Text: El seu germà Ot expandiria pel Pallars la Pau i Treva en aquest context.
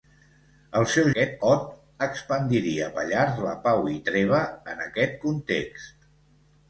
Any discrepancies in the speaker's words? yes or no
yes